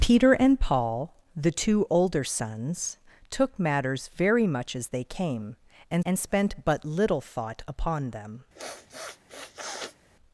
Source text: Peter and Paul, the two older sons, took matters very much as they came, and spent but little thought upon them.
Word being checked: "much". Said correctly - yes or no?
yes